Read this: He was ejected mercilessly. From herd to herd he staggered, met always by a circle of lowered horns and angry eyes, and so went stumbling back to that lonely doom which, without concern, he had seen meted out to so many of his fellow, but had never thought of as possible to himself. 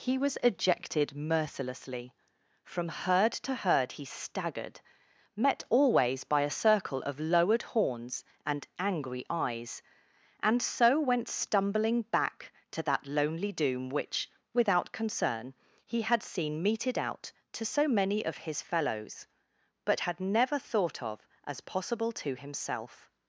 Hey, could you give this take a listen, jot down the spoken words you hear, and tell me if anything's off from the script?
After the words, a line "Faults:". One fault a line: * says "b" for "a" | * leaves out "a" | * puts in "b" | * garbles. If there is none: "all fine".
He was ejected mercilessly. From herd to herd he staggered, met always by a circle of lowered horns and angry eyes, and so went stumbling back to that lonely doom which, without concern, he had seen meted out to so many of his fellows, but had never thought of as possible to himself.
Faults:
* says "fellows" for "fellow"